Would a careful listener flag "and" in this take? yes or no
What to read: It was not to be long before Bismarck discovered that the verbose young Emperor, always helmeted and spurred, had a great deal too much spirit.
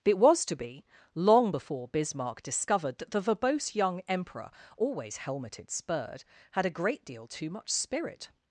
yes